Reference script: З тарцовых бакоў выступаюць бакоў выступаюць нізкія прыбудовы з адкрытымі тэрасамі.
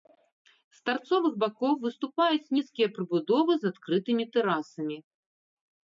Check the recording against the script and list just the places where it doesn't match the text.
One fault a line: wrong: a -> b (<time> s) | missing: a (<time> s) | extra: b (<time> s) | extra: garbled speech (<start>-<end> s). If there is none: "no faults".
missing: бакоў выступаюць (2.5 s)